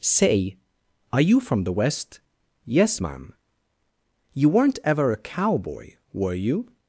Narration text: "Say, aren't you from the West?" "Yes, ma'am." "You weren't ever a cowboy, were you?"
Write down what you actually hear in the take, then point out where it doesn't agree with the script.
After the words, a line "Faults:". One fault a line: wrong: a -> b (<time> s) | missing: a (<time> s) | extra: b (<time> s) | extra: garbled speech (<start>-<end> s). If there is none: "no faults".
"Say, are you from the West?" "Yes, ma'am." "You weren't ever a cowboy, were you?"
Faults:
wrong: aren't -> are (1.1 s)